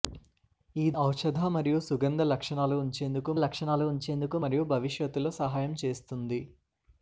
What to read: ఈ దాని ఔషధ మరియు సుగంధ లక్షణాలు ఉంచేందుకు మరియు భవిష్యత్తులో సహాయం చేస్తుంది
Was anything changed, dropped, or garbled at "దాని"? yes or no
yes